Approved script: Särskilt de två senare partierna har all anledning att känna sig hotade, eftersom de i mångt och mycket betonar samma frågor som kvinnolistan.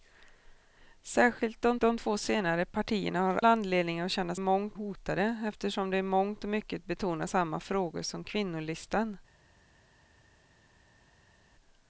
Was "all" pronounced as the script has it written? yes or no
no